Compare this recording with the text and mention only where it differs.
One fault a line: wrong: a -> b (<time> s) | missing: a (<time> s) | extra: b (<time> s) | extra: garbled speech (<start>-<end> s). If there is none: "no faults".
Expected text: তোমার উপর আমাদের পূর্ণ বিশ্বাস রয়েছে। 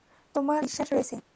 missing: উপর আমাদের পূর্ণ (0.6 s)